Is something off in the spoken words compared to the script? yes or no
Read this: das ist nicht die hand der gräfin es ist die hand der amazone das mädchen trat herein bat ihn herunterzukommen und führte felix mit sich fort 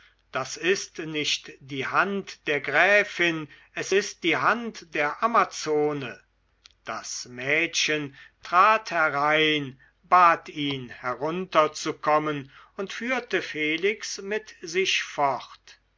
no